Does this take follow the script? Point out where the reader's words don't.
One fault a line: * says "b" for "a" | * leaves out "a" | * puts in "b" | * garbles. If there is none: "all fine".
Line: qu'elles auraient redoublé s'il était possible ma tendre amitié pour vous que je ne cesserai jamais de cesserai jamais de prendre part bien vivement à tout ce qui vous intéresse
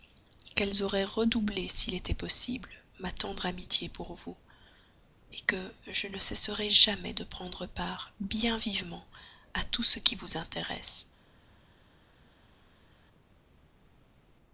* leaves out "cesserai jamais de"